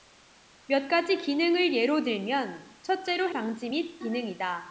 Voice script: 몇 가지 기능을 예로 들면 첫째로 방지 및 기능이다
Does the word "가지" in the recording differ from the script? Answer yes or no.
no